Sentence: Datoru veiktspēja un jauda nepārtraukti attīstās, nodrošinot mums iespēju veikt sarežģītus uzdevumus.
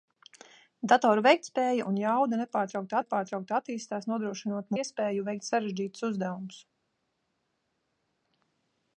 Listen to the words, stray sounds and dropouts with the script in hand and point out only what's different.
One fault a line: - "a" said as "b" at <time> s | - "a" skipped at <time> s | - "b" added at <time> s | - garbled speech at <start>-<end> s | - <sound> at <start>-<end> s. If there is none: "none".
- "nepārtraukti" added at 3.0 s
- "mums" skipped at 4.7 s